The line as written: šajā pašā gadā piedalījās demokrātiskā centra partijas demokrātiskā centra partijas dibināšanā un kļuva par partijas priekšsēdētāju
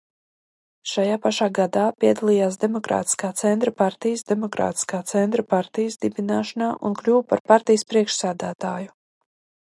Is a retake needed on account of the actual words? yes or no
no